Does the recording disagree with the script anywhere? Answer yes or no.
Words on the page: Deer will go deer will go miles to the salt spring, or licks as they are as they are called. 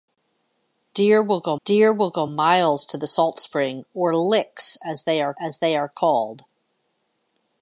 no